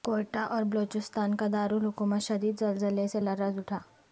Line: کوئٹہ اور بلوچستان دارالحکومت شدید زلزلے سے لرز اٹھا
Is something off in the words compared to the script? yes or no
yes